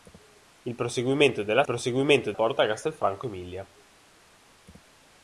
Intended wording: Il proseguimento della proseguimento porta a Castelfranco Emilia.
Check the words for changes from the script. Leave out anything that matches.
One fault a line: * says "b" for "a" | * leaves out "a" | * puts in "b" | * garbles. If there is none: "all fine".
all fine